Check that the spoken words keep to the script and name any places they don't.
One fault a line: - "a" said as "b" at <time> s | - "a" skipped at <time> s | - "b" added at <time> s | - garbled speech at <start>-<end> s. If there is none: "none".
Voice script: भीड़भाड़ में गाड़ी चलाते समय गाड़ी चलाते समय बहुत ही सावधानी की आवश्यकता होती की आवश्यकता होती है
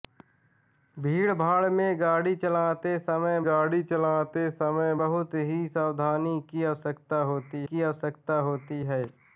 none